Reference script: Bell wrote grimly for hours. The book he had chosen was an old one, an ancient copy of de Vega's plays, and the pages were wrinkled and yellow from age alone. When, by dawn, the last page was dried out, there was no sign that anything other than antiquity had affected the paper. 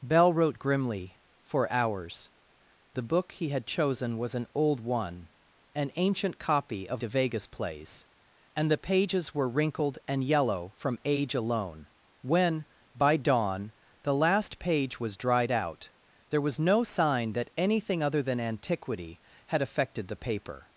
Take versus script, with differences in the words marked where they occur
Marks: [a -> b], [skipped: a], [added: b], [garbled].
Bell wrote grimly for hours. The book he had chosen was an old one, an ancient copy of de Vega's plays, and the pages were wrinkled and yellow from age alone. When, by dawn, the last page was dried out, there was no sign that anything other than antiquity had affected the paper.